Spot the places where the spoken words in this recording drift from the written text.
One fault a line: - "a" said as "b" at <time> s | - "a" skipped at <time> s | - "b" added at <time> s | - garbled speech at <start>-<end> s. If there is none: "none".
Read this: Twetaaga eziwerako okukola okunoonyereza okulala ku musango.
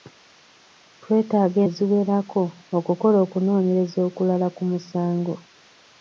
none